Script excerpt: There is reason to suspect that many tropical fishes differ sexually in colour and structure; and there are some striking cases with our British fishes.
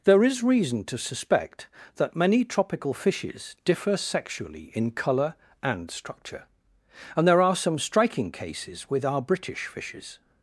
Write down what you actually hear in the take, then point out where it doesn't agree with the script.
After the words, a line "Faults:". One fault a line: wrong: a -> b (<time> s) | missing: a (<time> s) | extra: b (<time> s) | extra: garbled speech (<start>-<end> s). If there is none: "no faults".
There is reason to suspect that many tropical fishes differ sexually in colour and structure; and there are some striking cases with our British fishes.
Faults:
no faults